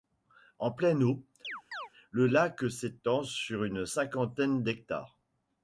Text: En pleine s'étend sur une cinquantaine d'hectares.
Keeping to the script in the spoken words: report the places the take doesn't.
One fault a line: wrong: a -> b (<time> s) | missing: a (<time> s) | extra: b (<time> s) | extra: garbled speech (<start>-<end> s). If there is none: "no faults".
extra: eau le lac (1.0 s)